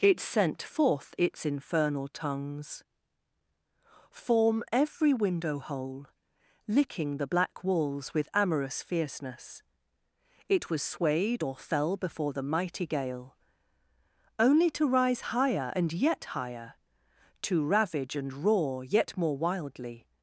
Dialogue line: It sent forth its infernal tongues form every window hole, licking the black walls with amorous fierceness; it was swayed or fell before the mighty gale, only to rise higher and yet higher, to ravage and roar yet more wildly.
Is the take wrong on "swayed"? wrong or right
right